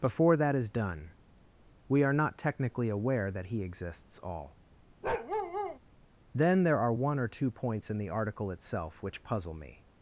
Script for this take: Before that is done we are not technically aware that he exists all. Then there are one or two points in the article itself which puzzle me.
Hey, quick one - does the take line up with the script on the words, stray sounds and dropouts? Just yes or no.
no